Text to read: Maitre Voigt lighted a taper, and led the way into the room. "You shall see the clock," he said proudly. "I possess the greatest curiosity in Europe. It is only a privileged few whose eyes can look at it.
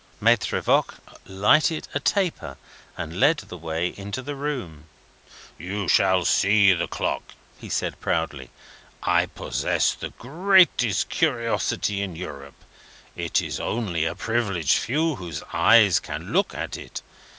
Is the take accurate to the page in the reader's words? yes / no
yes